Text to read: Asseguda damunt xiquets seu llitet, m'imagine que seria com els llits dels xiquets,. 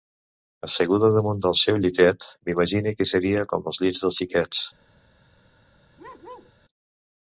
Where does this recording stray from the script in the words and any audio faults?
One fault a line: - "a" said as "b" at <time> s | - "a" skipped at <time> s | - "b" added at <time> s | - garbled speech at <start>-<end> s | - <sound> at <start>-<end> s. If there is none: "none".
- "xiquets" said as "del" at 1.4 s
- bark at 6.0-6.5 s